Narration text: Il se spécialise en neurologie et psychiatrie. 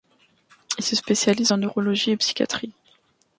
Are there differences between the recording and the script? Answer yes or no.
no